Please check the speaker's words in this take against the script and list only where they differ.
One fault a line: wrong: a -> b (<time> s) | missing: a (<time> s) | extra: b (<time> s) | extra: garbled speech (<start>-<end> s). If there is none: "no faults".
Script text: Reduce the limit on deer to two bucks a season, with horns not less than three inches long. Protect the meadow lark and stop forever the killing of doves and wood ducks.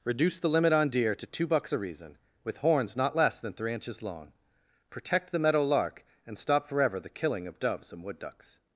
wrong: season -> reason (1.8 s)